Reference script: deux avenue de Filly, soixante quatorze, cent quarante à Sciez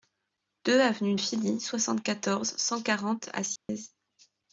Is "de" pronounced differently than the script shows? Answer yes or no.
yes